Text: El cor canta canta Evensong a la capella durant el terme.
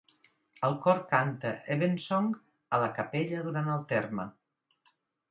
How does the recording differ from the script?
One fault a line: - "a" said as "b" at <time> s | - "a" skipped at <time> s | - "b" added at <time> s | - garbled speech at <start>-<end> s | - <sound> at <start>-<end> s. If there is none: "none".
- "canta" skipped at 1.5 s